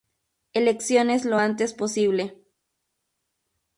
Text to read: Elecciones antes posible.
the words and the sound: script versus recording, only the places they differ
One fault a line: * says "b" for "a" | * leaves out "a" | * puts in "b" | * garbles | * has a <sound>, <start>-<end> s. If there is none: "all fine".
* puts in "lo"